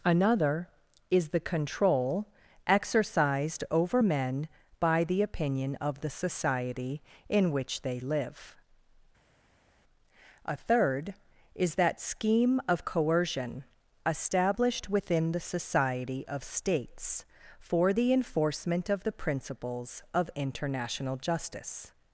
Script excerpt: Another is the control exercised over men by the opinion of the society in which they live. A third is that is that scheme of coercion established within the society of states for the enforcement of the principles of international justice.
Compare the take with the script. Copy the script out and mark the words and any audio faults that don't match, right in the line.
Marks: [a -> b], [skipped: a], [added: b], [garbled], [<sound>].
Another is the control exercised over men by the opinion of the society in which they live. A third is that [skipped: is that] scheme of coercion established within the society of states for the enforcement of the principles of international justice.